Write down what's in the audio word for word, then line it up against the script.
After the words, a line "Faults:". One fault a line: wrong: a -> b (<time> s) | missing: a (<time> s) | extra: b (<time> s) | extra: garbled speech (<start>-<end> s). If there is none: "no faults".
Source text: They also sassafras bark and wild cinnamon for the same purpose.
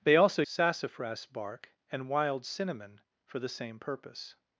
They also sassafras bark and wild cinnamon for the same purpose.
Faults:
no faults